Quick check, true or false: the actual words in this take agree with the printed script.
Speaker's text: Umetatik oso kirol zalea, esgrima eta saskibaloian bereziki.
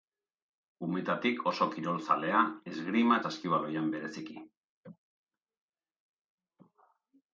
false